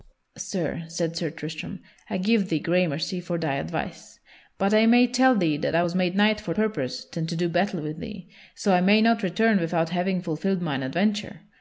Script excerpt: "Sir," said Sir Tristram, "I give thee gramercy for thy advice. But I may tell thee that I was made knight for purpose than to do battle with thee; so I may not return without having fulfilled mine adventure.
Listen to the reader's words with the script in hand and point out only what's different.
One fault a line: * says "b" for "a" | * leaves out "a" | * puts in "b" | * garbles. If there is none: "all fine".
all fine